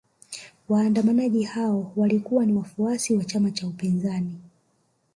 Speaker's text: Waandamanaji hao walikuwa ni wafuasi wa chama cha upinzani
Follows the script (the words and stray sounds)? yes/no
yes